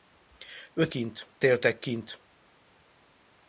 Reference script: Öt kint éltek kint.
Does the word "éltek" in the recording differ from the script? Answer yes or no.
no